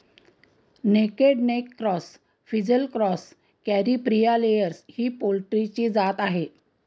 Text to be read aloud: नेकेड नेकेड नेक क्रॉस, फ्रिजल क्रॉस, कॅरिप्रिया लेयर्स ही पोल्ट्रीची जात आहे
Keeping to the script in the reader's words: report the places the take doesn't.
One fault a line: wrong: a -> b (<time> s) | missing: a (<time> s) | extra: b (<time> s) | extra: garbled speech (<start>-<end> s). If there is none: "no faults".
missing: नेकेड (1.4 s)